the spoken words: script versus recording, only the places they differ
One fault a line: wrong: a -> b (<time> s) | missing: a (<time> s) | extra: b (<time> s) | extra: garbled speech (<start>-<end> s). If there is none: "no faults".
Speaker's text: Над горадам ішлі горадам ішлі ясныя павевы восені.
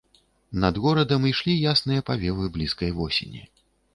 missing: горадам ішлі (1.5 s)
extra: блізкай (2.6 s)